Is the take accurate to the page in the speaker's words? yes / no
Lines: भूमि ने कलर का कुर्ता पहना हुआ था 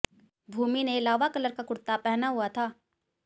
no